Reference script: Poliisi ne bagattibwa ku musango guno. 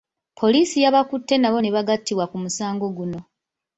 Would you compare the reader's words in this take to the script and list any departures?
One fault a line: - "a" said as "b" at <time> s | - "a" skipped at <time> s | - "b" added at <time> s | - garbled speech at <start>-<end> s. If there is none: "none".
- "yabakutte nabo" added at 0.8 s